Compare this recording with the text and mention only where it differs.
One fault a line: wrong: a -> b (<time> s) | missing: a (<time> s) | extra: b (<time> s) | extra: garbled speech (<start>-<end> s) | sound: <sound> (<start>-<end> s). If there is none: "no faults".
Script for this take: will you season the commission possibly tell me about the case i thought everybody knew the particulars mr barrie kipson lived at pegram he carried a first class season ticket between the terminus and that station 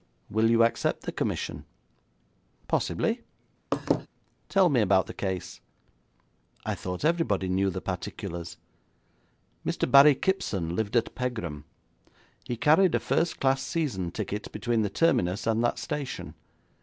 wrong: season -> accept (0.6 s)
sound: laugh (3.7-4.1 s)